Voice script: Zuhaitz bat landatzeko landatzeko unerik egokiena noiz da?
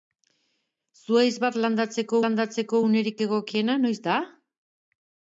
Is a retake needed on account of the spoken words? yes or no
no